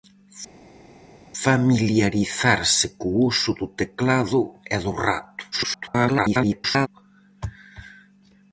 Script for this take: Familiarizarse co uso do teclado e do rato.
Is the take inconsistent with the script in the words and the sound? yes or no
yes